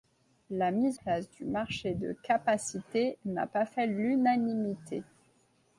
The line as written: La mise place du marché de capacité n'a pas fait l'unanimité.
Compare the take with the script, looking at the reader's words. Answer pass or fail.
pass